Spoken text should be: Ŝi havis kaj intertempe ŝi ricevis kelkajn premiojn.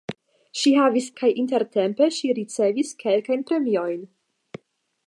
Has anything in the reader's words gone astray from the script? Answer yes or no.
no